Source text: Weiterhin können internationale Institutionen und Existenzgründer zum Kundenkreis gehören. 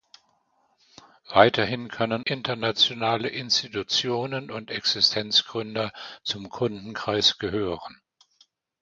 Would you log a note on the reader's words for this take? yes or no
no